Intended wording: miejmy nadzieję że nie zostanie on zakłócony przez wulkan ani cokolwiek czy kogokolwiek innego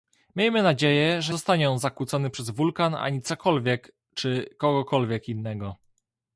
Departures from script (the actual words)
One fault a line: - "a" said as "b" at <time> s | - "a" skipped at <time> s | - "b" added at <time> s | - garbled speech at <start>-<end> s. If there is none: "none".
- "nie" skipped at 1.3 s